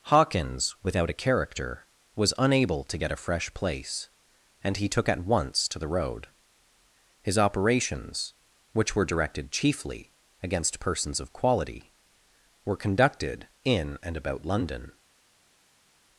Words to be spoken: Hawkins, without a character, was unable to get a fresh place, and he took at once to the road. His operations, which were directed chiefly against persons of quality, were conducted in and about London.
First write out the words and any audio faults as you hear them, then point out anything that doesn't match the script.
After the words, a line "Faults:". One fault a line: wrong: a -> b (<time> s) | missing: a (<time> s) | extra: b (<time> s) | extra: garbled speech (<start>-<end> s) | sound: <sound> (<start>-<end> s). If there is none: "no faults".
Hawkins, without a character, was unable to get a fresh place, and he took at once to the road. His operations, which were directed chiefly against persons of quality, were conducted in and about London.
Faults:
no faults